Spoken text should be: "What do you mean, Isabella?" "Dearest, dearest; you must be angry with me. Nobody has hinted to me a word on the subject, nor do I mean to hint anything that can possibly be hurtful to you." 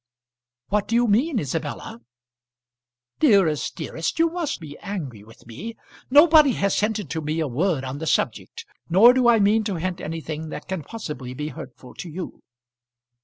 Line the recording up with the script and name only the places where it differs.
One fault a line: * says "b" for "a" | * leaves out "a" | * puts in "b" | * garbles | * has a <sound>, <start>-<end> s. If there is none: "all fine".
all fine